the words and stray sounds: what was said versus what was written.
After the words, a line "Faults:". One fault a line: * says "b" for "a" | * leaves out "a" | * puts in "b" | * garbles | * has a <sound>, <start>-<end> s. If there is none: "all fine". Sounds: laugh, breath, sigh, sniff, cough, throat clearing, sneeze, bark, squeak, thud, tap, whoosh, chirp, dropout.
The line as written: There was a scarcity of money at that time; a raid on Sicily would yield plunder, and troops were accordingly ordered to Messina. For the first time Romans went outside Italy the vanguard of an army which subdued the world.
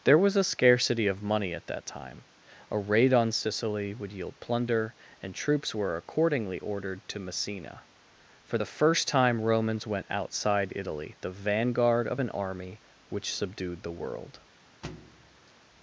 There was a scarcity of money at that time; a raid on Sicily would yield plunder, and troops were accordingly ordered to Messina. For the first time Romans went outside Italy the vanguard of an army which subdued the world.
Faults:
* has a thud, 14.8-15.5 s